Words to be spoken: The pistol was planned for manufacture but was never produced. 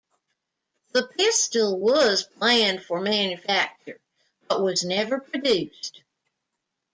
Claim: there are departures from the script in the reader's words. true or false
false